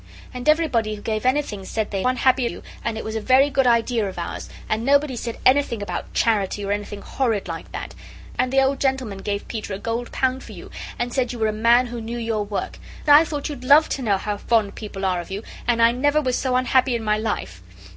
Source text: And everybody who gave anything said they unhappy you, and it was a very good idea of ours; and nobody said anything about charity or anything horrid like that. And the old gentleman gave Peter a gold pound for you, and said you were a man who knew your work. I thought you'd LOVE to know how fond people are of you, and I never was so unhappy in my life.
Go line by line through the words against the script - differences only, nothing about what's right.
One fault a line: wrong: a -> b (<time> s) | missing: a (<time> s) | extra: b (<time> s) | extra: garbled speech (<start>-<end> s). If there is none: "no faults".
no faults